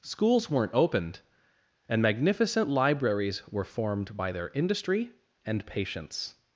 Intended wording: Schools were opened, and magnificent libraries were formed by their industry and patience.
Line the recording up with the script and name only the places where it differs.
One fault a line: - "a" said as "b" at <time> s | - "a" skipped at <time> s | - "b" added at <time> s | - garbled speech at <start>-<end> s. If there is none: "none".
- "were" said as "weren't" at 0.5 s